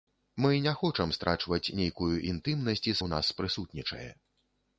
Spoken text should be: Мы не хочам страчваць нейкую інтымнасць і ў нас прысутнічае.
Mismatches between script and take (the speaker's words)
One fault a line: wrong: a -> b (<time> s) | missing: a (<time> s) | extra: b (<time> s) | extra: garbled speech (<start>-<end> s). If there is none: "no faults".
no faults